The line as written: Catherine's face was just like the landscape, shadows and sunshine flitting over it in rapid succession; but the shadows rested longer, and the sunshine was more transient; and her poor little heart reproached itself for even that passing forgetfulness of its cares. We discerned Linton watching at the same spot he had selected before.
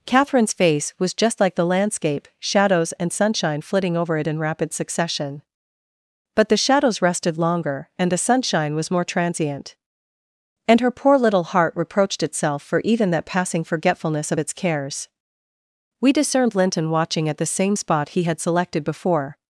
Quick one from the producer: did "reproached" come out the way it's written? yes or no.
yes